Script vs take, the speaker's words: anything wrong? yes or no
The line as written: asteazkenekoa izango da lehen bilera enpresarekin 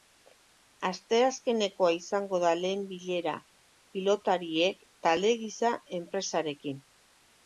yes